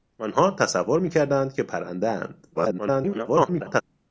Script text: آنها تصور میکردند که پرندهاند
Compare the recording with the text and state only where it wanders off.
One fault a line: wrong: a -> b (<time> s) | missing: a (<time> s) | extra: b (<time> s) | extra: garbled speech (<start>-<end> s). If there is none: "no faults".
extra: garbled speech (2.5-3.8 s)